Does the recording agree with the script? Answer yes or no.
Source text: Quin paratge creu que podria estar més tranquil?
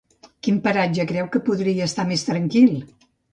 yes